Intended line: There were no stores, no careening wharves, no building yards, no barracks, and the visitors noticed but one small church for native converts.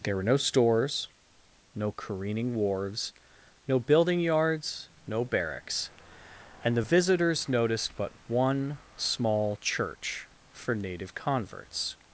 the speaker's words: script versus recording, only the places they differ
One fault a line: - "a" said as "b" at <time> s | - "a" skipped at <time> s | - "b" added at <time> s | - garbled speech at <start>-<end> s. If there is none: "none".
none